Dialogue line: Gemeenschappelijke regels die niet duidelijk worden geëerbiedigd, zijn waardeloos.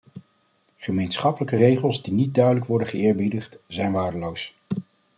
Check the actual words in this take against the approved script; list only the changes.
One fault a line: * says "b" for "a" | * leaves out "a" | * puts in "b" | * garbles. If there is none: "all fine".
all fine